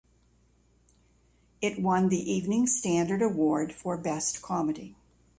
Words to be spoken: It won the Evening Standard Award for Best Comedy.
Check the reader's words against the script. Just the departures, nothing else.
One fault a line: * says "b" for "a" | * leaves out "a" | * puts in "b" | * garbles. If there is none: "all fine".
all fine